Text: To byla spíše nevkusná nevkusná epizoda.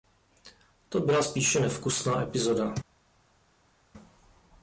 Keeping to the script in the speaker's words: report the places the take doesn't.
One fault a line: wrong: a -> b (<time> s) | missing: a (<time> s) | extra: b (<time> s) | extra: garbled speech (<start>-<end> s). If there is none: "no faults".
missing: nevkusná (2.2 s)